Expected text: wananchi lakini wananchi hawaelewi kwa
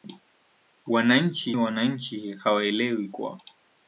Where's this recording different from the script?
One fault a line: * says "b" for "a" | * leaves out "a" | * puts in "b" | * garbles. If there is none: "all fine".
* leaves out "lakini"